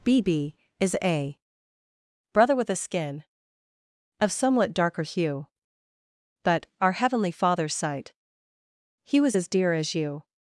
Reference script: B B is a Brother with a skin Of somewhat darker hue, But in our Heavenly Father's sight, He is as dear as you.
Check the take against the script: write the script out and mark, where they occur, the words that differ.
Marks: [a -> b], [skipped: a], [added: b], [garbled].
B B is a Brother with a skin Of somewhat darker hue, But [skipped: in] our Heavenly Father's sight, He [is -> was] as dear as you.